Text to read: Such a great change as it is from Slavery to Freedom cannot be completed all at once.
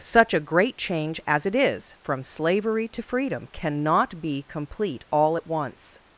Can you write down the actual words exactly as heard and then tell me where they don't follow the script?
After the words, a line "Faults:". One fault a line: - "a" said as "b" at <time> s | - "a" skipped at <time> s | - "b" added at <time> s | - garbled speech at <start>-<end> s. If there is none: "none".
Such a great change as it is from Slavery to Freedom cannot be complete all at once.
Faults:
- "completed" said as "complete" at 4.4 s